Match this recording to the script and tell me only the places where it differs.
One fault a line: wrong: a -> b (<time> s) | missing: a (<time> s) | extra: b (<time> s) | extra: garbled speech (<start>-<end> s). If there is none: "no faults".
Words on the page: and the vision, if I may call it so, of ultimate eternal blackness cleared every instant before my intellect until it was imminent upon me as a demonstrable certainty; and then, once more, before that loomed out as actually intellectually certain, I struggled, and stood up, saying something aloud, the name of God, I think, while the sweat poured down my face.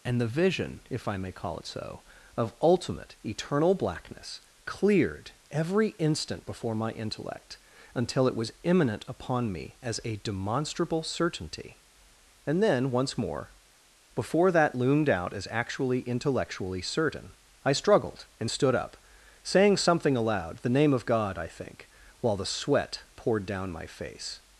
no faults